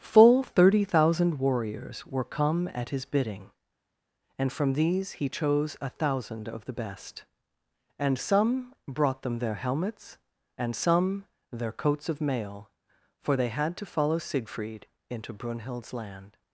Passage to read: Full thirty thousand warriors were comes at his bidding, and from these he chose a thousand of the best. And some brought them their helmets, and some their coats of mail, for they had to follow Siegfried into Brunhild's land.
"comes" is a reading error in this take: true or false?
true